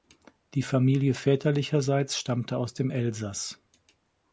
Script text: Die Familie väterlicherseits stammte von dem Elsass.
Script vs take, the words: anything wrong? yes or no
yes